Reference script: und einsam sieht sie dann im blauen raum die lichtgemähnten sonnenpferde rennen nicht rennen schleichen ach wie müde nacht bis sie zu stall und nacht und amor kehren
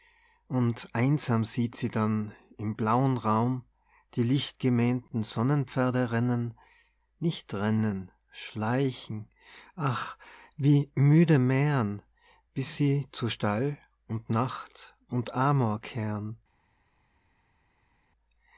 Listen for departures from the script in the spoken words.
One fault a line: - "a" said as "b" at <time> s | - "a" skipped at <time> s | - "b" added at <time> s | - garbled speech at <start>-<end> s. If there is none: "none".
- "nacht" said as "mähren" at 11.4 s